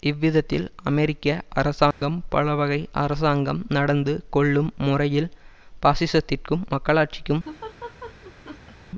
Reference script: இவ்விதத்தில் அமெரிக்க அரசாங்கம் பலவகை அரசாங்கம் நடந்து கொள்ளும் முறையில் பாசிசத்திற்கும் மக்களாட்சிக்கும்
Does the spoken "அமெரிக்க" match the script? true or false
true